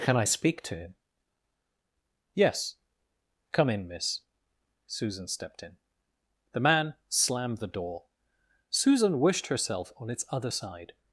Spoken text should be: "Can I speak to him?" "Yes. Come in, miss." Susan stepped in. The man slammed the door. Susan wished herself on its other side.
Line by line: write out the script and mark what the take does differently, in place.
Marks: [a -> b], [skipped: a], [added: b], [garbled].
"Can I speak to him?" "Yes. Come in, miss." Susan stepped in. The man slammed the door. Susan wished herself on its other side.